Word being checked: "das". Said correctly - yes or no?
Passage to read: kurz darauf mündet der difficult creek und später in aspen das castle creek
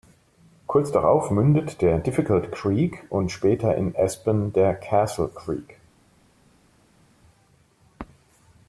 no